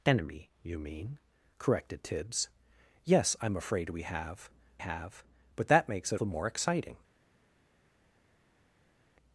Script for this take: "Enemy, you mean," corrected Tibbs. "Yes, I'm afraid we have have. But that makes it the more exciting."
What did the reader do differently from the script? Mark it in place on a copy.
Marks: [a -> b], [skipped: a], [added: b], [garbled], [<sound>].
"Enemy, you mean," corrected Tibbs. "Yes, I'm afraid we have have. But that makes it the more exciting."